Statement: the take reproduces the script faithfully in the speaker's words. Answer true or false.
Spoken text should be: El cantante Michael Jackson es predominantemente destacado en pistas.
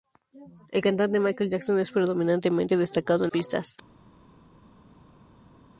true